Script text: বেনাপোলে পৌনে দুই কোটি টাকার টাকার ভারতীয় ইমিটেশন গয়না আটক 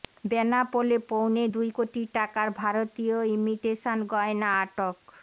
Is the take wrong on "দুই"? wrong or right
right